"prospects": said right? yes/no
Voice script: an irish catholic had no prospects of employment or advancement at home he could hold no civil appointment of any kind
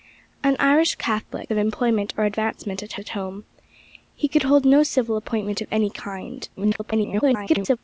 no